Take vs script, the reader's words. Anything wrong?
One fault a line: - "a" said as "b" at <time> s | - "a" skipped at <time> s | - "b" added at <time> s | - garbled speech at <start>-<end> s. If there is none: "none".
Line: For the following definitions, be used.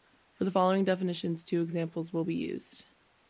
- "two examples will" added at 1.4 s